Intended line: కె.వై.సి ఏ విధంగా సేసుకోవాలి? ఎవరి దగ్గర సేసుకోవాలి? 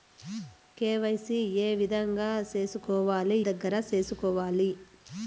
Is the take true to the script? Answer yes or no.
no